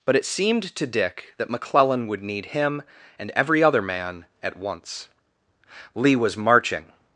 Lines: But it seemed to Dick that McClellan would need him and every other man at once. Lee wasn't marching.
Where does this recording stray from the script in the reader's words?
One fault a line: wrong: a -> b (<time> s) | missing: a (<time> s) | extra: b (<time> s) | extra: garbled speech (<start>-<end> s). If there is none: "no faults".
wrong: wasn't -> was (6.1 s)